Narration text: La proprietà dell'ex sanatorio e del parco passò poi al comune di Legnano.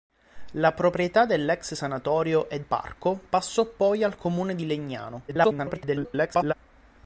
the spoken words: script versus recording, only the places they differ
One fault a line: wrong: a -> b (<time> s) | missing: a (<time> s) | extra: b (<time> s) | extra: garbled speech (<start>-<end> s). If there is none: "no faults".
missing: del (2.6 s)
extra: garbled speech (5.3-6.5 s)